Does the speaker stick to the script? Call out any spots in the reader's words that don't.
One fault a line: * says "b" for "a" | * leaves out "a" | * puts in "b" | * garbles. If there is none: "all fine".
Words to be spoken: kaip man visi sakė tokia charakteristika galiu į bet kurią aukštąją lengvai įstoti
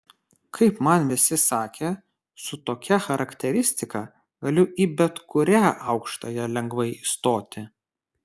* puts in "su"